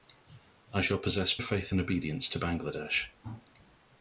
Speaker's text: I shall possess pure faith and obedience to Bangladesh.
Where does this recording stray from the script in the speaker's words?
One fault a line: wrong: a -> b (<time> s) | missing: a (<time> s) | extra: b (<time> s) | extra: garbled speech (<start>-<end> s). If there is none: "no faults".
missing: pure (1.4 s)